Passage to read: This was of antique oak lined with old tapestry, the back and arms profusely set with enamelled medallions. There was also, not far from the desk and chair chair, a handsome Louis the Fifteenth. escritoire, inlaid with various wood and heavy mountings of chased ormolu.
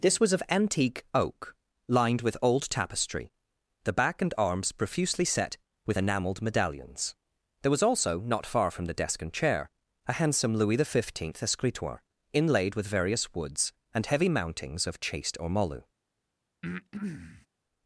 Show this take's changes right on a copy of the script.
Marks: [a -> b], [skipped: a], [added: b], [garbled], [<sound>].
This was of antique oak lined with old tapestry, the back and arms profusely set with enamelled medallions. There was also, not far from the desk and chair [skipped: chair,] a handsome Louis the Fifteenth. escritoire, inlaid with various [wood -> woods] and heavy mountings of chased ormolu. [breath]